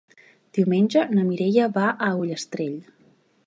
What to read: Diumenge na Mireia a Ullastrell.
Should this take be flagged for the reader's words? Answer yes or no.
yes